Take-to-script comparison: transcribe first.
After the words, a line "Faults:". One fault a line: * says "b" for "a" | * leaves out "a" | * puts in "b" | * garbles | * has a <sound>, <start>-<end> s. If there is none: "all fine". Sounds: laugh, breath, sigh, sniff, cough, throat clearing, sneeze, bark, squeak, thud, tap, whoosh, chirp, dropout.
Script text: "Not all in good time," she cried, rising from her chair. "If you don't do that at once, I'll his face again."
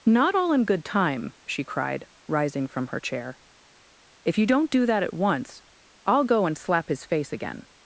"Not all in good time," she cried, rising from her chair. "If you don't do that at once, I'll go and slap his face again."
Faults:
* puts in "go and slap"